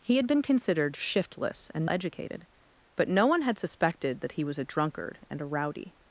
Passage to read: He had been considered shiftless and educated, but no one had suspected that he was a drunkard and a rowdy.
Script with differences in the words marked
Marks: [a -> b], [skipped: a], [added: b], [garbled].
He had been considered shiftless and educated, but no one had suspected that he was a drunkard and a rowdy.